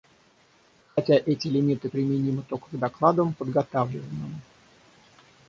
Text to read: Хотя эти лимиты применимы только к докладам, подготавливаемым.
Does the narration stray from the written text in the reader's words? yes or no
no